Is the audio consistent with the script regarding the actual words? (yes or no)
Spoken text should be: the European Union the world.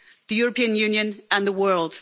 no